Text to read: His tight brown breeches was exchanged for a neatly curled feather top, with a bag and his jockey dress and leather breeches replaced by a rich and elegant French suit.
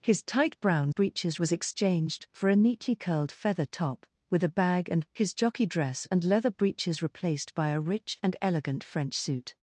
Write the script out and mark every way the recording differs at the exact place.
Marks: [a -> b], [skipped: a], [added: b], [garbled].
His tight brown breeches was exchanged for a neatly curled feather top, with a bag and his jockey dress and leather breeches replaced by a rich and elegant French suit.